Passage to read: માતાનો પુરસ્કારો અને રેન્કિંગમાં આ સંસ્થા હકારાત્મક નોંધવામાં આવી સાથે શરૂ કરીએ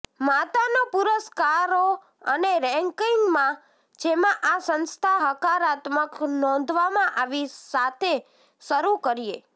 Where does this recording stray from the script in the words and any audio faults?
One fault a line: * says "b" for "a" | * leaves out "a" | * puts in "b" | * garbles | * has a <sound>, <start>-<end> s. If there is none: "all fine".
* puts in "જેમાં"